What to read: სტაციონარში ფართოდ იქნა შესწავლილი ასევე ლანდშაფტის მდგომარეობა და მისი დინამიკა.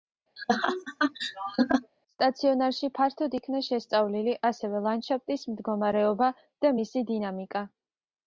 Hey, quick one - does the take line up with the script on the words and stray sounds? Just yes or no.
no